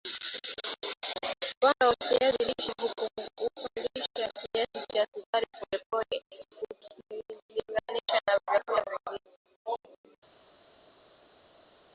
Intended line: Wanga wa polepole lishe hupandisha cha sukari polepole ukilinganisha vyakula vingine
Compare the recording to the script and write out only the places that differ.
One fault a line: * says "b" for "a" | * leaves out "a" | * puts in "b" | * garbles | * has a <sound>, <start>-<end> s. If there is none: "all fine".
* says "kiazi" for "polepole"
* puts in "kiasi"
* puts in "na"